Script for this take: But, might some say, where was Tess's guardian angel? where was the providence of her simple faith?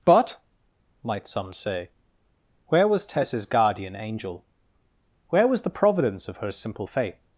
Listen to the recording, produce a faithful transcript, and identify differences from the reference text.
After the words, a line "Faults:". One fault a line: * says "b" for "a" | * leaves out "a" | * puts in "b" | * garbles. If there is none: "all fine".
But, might some say, where was Tess's guardian angel? where was the providence of her simple faith?
Faults:
all fine